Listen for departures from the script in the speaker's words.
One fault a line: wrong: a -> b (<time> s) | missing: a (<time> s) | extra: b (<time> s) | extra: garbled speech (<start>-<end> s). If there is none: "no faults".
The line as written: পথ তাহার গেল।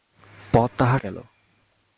no faults